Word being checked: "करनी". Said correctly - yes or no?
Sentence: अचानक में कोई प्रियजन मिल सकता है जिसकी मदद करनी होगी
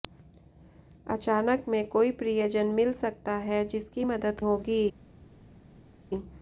no